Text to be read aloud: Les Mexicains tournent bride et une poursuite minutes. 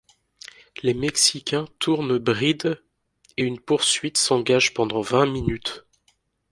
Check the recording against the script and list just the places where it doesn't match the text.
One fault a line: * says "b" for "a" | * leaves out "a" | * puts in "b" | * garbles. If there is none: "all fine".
* puts in "s'engage pendant vingt"